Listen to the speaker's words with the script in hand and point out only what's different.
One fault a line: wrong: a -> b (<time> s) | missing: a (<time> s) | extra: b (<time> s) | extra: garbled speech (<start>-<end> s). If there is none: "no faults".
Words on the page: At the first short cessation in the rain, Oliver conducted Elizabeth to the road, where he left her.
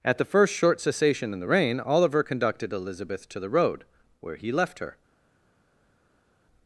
no faults